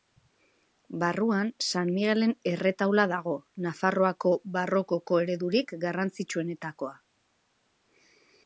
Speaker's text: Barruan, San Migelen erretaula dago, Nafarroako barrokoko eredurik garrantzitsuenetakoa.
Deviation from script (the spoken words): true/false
false